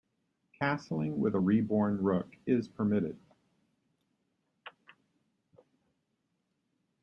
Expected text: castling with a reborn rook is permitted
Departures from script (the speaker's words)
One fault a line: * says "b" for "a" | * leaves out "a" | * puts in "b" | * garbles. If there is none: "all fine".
all fine